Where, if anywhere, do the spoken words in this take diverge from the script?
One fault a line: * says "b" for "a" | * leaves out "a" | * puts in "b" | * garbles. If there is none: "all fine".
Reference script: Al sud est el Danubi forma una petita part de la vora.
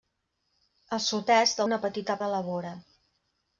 * leaves out "el Danubi forma"
* leaves out "part"